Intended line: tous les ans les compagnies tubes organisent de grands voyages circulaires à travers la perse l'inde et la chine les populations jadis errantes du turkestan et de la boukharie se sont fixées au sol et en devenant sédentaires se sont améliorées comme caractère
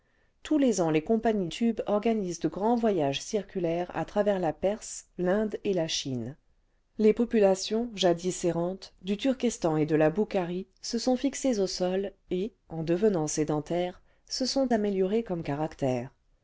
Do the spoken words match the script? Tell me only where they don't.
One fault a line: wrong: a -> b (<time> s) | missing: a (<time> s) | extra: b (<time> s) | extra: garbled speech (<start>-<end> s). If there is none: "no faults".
no faults